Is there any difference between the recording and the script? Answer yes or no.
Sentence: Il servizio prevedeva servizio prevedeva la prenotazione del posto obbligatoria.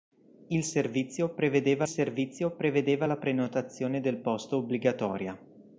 no